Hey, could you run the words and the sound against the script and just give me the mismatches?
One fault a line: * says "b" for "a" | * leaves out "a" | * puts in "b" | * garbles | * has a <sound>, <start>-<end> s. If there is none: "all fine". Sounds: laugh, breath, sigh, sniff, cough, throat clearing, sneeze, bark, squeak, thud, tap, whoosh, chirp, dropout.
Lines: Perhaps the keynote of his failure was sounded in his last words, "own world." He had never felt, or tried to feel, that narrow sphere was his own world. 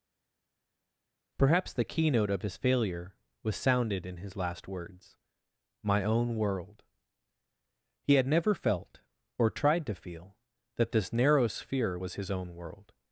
* puts in "my"
* puts in "this"